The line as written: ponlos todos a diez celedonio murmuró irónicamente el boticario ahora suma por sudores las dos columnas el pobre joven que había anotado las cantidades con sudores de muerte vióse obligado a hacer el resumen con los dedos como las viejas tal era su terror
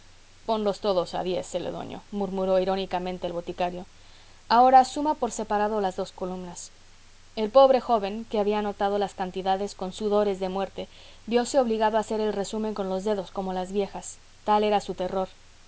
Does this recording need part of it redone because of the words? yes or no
yes